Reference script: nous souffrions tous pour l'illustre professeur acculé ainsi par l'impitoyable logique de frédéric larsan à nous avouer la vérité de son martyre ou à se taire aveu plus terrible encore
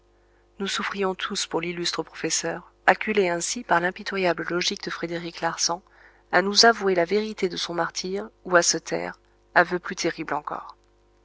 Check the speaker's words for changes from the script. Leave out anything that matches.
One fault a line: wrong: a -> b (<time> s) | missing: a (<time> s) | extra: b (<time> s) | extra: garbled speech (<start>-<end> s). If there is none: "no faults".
no faults